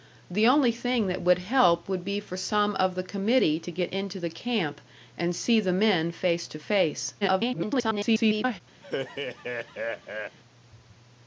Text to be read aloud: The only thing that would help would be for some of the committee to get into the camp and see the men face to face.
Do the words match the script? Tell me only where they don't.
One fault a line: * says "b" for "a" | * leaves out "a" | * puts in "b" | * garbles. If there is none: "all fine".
* garbles